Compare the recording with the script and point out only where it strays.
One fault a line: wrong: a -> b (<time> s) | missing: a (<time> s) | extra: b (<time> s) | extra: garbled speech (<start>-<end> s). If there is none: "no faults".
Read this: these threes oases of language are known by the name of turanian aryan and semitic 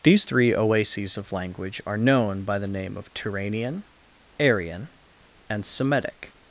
wrong: threes -> three (0.2 s)